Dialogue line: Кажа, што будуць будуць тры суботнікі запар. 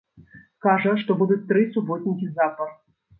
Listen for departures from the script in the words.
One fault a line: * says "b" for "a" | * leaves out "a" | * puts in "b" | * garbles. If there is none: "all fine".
* leaves out "будуць"